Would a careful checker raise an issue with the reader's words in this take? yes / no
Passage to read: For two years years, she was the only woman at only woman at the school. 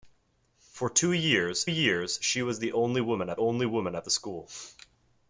no